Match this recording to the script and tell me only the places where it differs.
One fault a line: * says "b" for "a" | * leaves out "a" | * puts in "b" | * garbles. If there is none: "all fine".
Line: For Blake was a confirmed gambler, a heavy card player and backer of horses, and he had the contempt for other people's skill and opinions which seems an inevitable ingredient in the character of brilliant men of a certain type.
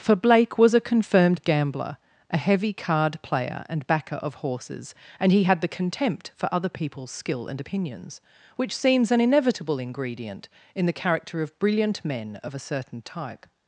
all fine